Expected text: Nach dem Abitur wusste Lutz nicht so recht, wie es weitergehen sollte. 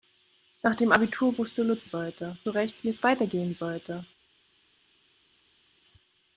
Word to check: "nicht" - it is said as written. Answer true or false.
false